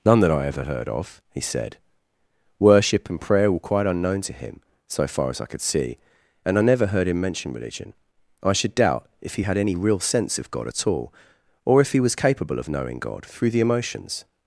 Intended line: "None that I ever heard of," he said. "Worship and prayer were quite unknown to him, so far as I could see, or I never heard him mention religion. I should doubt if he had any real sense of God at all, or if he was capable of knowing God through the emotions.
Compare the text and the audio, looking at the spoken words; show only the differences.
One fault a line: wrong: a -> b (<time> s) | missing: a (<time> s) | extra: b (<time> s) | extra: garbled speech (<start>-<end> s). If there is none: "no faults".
wrong: or -> and (6.4 s)